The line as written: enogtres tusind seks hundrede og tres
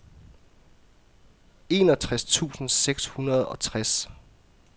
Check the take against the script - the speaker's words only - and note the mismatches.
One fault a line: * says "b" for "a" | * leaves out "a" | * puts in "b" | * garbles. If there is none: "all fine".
all fine